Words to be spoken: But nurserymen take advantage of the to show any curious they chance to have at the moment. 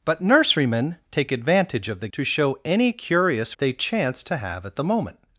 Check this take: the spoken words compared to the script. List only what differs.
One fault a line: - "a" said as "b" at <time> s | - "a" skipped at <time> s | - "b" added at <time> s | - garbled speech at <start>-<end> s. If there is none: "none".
none